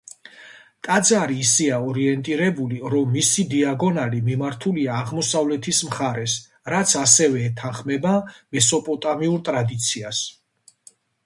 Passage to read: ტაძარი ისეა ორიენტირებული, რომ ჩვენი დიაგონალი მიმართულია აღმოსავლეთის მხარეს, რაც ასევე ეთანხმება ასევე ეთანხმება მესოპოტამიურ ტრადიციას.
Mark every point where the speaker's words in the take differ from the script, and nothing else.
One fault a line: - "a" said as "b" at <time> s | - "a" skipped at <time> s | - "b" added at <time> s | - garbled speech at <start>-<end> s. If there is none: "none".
- "ჩვენი" said as "მისი" at 3.2 s
- "ასევე ეთანხმება" skipped at 8.2 s